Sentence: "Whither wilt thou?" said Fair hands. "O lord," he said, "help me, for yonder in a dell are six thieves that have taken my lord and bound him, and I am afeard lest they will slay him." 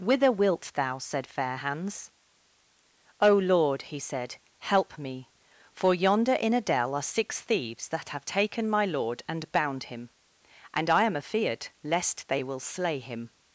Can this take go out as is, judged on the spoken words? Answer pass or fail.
pass